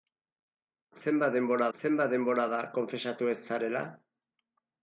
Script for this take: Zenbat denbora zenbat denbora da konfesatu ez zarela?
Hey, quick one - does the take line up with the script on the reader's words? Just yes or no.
yes